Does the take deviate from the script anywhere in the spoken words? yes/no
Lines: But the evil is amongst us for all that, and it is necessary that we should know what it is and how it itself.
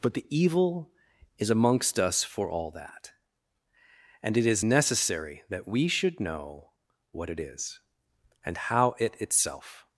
no